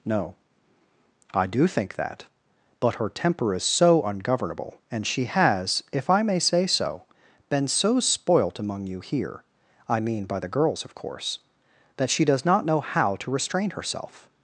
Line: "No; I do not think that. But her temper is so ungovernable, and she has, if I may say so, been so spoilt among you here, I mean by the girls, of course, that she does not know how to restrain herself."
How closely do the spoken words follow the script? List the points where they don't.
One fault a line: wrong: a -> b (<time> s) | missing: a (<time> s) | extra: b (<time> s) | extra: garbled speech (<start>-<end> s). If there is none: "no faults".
missing: not (1.7 s)